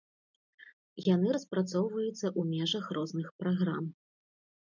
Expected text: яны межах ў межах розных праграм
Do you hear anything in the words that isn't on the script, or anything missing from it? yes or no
yes